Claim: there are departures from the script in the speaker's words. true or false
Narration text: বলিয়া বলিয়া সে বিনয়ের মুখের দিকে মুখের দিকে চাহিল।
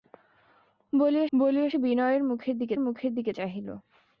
false